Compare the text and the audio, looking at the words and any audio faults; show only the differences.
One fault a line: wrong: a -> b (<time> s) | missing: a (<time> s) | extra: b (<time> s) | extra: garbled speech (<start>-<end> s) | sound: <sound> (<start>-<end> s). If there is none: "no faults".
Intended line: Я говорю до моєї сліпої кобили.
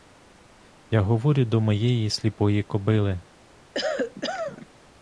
sound: cough (3.7-4.7 s)